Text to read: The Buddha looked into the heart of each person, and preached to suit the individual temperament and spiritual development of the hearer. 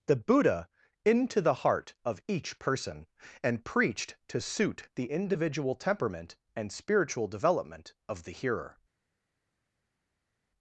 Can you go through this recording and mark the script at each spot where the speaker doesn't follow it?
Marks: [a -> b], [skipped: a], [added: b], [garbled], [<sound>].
The Buddha [skipped: looked] into the heart of each person, and preached to suit the individual temperament and spiritual development of the hearer.